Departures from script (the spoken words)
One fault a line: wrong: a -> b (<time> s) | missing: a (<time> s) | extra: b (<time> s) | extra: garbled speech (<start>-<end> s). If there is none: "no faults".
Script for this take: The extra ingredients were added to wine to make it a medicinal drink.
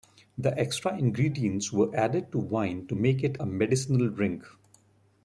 no faults